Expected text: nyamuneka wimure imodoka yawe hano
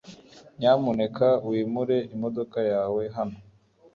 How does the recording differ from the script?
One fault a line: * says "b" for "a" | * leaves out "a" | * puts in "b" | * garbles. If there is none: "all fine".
all fine